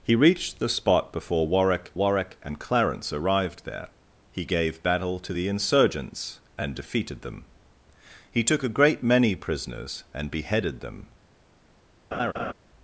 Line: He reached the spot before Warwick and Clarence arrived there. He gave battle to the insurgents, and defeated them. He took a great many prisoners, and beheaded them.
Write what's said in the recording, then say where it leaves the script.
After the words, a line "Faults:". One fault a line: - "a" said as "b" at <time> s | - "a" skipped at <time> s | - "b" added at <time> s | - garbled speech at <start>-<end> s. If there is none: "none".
He reached the spot before Warwick Warwick and Clarence arrived there. He gave battle to the insurgents, and defeated them. He took a great many prisoners, and beheaded them.
Faults:
- "Warwick" added at 1.9 s